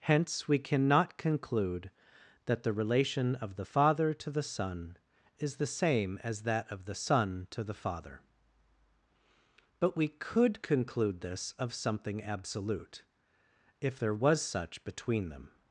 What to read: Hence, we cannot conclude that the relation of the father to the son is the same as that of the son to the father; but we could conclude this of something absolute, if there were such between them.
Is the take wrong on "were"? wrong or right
wrong